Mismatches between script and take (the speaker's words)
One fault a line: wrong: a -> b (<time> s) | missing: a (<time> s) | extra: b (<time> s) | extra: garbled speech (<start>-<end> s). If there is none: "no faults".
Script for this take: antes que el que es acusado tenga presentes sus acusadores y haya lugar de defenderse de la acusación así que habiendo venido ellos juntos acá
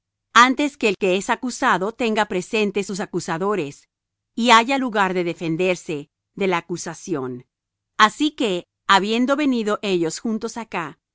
no faults